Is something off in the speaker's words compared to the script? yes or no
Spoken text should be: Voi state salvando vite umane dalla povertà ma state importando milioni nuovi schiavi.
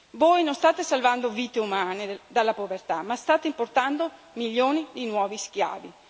yes